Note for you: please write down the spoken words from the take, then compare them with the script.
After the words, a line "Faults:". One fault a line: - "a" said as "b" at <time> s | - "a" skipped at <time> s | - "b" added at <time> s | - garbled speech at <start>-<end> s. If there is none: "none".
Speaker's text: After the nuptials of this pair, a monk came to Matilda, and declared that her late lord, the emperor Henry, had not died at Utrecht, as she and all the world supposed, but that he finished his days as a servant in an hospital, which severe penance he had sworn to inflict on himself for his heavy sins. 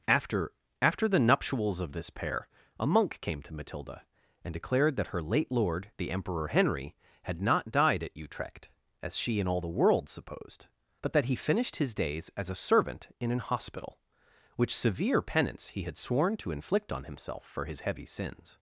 After after the nuptials of this pair, a monk came to Matilda, and declared that her late lord, the emperor Henry, had not died at Utrecht, as she and all the world supposed, but that he finished his days as a servant in an hospital, which severe penance he had sworn to inflict on himself for his heavy sins.
Faults:
- "after" added at 0.8 s